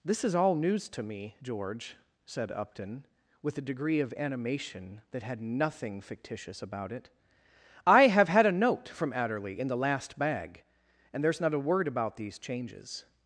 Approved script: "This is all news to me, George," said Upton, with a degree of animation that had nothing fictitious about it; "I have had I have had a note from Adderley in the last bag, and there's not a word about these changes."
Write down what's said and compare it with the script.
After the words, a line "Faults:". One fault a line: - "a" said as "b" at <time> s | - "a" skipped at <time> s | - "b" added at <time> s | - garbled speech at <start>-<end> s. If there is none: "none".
"This is all news to me, George," said Upton, with a degree of animation that had nothing fictitious about it; "I have had a note from Adderley in the last bag, and there's not a word about these changes."
Faults:
- "I have had" skipped at 8.4 s